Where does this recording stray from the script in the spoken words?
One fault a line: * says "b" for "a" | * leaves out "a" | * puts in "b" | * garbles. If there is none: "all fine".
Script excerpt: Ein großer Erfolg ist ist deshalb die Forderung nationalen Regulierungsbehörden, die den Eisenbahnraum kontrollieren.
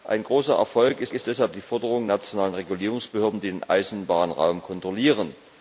all fine